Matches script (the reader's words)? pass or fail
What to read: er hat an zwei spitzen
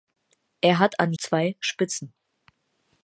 pass